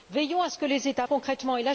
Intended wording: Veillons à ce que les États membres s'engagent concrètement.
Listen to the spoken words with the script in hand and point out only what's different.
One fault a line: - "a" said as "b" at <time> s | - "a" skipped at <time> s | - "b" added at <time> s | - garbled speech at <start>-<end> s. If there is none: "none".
- "membres s'engagent" skipped at 1.1 s